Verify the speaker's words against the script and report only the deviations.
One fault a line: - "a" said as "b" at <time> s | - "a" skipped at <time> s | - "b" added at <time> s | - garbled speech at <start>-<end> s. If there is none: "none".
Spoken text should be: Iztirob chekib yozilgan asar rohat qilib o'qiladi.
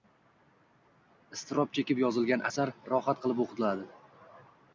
none